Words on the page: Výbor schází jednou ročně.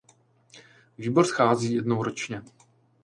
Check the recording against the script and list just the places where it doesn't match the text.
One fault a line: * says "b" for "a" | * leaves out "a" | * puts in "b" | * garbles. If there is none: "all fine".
all fine